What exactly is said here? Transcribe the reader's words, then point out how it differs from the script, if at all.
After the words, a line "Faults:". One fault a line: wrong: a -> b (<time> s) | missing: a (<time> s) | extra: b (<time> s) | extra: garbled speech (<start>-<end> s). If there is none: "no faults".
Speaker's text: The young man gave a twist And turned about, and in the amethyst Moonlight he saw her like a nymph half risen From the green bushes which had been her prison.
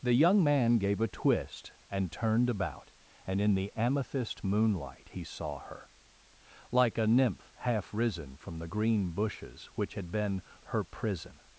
The young man gave a twist And turned about, and in the amethyst Moonlight he saw her like a nymph half risen From the green bushes which had been her prison.
Faults:
no faults